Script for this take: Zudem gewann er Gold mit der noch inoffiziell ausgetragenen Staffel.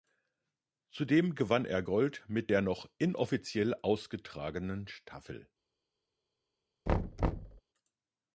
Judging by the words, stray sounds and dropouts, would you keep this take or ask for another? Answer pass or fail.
fail